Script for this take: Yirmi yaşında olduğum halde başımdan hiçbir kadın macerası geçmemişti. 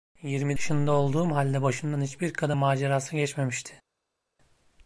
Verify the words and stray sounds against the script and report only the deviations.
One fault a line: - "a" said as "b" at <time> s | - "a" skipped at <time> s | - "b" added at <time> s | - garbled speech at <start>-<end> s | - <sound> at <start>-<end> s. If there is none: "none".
none